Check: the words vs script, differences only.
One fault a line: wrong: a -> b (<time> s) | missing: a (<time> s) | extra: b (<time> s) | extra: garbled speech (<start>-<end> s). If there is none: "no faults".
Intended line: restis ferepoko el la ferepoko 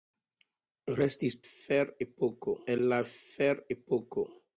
no faults